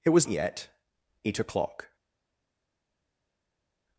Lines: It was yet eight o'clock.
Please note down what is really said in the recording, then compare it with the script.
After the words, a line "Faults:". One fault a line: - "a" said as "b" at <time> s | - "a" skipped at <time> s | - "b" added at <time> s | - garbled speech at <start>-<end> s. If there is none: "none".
It was yet eight o'clock.
Faults:
none